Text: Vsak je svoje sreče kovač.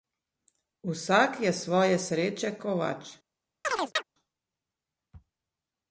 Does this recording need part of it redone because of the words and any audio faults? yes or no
yes